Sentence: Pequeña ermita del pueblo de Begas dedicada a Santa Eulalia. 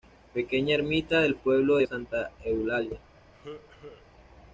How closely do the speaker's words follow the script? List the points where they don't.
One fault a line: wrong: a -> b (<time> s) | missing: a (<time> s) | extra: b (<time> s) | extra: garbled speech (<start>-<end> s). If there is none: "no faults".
missing: Begas dedicada (1.9 s)